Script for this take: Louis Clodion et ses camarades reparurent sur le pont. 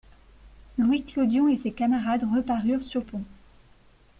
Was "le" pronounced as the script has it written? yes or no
no